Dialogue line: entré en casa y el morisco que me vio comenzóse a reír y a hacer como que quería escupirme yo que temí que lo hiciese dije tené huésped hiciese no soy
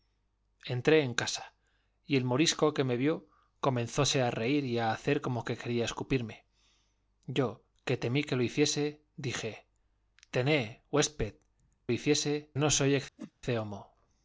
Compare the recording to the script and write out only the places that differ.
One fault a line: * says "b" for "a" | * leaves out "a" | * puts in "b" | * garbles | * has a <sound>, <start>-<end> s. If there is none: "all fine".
* has a whoosh, 13.2-13.3 s